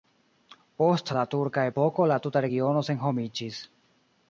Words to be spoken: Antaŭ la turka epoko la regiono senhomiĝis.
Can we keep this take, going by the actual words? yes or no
no